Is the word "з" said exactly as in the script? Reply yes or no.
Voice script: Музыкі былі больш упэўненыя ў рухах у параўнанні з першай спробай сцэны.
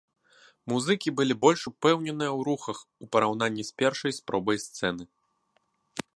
yes